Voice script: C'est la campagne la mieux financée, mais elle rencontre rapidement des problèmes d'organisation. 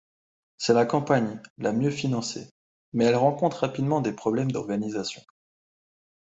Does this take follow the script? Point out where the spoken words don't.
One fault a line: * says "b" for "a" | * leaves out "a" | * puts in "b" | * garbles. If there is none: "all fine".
all fine